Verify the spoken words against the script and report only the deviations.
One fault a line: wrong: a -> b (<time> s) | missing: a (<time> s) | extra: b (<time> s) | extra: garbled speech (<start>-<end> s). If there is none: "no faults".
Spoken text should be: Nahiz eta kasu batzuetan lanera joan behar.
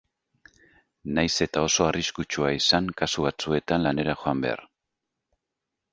extra: oso arriskutsua izan (1.7 s)